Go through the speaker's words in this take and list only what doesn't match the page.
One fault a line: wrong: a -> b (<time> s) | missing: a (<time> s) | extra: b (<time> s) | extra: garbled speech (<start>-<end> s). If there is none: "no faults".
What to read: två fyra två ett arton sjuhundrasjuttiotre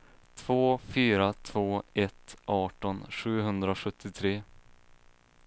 no faults